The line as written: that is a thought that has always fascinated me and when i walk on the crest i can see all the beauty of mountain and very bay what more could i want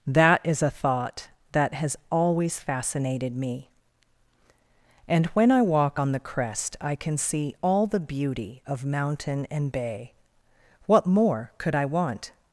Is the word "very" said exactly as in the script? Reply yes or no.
no